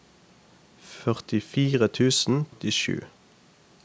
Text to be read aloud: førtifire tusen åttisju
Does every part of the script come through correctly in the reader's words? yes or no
yes